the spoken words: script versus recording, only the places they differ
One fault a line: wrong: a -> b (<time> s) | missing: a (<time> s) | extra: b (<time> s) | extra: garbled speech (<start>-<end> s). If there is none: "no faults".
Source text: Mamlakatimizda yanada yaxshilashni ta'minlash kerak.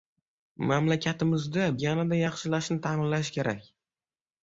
no faults